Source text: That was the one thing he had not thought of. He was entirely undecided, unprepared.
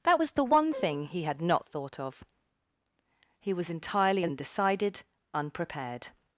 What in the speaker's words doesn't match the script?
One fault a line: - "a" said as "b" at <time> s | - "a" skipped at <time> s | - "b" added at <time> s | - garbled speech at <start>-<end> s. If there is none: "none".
none